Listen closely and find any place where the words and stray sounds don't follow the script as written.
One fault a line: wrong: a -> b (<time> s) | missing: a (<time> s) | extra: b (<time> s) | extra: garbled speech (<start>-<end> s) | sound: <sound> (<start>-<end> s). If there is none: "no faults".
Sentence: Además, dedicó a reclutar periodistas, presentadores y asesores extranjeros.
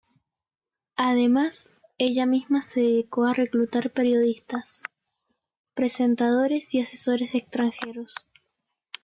extra: ella misma se (2.0 s)